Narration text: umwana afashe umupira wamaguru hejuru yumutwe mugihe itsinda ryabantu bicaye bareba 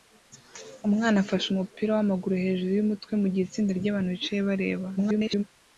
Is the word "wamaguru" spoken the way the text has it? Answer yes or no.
yes